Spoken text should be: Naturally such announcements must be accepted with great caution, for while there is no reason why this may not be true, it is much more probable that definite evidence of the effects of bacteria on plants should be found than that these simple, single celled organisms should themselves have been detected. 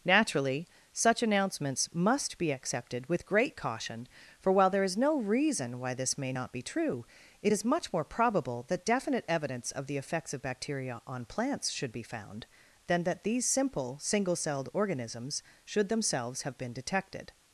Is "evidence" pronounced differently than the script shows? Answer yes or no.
no